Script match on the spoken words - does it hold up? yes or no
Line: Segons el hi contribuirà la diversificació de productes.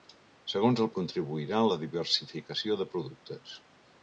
yes